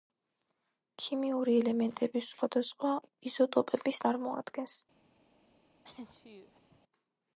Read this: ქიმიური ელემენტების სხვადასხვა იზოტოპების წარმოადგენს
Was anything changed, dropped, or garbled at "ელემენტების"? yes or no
no